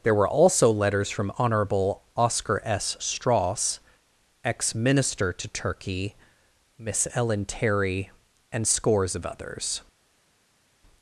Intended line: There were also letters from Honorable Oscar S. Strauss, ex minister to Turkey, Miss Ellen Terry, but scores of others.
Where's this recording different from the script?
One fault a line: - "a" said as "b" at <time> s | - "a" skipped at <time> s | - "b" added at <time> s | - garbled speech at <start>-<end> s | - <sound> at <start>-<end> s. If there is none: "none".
- "but" said as "and" at 8.5 s